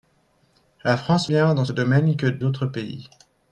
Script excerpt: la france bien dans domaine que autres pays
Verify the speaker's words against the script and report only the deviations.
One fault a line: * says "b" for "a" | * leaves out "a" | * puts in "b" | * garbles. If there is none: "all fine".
all fine